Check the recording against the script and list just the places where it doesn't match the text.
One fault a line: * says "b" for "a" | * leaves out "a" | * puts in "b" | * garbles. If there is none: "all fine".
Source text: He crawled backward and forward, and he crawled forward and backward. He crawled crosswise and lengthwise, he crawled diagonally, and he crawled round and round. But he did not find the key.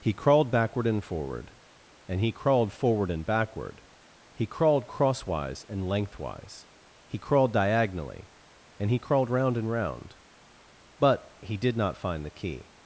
all fine